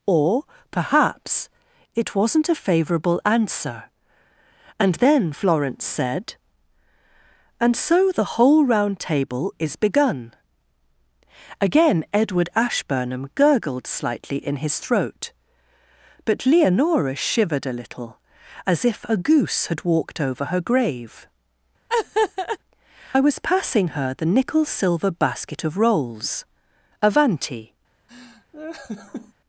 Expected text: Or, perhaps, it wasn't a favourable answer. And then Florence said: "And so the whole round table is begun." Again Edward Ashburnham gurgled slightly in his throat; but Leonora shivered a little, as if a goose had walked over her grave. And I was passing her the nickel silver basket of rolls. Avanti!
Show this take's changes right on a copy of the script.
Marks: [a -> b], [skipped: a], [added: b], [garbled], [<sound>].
Or, perhaps, it wasn't a favourable answer. And then Florence said: "And so the whole round table is begun." Again Edward Ashburnham gurgled slightly in his throat; but Leonora shivered a little, as if a goose had walked over her grave. [skipped: And] [laugh] I was passing her the nickel silver basket of rolls. Avanti! [laugh]